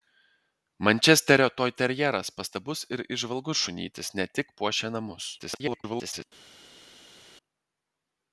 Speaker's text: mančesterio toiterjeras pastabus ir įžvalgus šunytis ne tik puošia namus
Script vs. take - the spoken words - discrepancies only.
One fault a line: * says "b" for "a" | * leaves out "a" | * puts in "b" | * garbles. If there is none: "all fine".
* garbles